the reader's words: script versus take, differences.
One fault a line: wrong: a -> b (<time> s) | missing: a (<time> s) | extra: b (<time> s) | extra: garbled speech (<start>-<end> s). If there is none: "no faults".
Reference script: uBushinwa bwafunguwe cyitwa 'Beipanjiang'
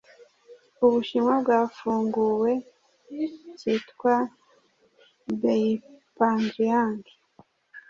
no faults